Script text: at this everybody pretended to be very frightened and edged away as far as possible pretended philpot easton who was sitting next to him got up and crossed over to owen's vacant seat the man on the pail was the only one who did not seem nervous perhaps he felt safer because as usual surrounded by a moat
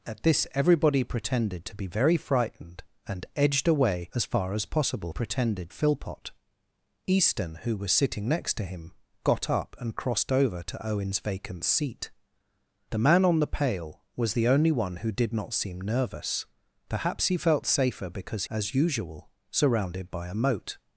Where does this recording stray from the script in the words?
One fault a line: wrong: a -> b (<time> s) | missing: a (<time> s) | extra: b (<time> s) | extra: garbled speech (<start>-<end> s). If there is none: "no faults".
no faults